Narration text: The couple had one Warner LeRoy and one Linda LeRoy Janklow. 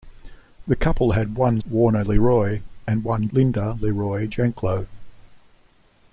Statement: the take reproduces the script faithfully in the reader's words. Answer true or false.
true